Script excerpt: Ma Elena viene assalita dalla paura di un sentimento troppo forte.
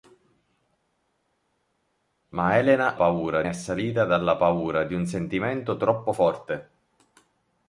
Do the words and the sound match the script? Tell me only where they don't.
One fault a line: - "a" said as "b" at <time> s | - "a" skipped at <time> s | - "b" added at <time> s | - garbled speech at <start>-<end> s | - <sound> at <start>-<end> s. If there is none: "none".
- "viene" said as "paura" at 2.9 s